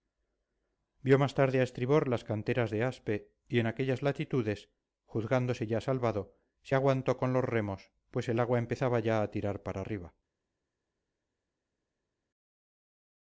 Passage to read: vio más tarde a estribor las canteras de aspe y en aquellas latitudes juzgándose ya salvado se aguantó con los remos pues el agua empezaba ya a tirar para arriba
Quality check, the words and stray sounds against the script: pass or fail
pass